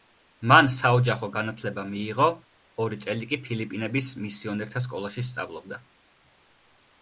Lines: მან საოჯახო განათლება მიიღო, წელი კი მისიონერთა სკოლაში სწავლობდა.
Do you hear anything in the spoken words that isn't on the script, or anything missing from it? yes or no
yes